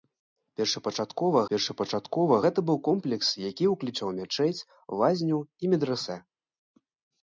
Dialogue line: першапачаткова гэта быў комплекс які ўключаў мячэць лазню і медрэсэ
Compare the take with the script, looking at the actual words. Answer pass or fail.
fail